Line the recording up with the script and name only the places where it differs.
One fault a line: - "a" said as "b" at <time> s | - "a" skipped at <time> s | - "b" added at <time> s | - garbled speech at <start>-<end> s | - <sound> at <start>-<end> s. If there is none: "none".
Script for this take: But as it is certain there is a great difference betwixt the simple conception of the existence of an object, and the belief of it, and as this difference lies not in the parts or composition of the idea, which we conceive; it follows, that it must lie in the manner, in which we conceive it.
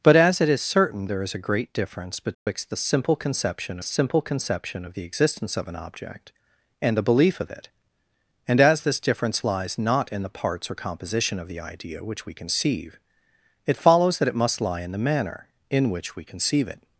- dropout at 2.3-2.5 s
- "simple conception" added at 3.8 s